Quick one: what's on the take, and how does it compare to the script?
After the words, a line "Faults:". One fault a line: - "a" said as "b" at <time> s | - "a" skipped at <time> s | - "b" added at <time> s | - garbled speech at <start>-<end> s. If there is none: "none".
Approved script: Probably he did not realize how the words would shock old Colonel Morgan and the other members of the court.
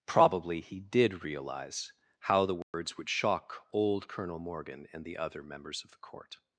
Probably he did realize how the words would shock old Colonel Morgan and the other members of the court.
Faults:
- "not" skipped at 1.2 s